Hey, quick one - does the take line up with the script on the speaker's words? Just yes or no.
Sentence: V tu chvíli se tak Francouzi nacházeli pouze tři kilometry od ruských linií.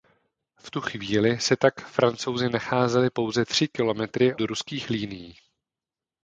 no